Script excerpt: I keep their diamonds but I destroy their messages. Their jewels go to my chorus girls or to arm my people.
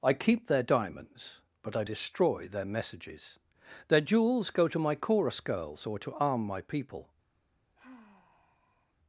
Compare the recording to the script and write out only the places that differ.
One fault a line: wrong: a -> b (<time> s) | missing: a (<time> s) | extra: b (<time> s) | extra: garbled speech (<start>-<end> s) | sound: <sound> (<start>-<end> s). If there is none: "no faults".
sound: sigh (7.8-8.9 s)